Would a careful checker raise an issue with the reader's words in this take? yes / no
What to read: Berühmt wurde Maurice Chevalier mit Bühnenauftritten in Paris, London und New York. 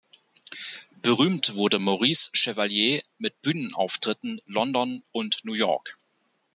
yes